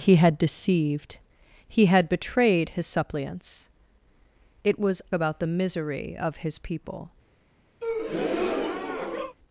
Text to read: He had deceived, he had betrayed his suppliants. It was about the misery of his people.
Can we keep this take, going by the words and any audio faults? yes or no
no